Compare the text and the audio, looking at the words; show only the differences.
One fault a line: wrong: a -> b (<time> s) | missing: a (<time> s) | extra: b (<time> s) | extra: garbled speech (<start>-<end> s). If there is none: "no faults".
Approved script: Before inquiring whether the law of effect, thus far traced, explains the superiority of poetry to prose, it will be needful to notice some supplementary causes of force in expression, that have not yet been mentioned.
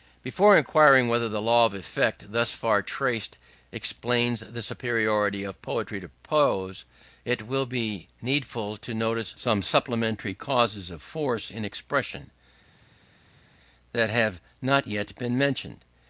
no faults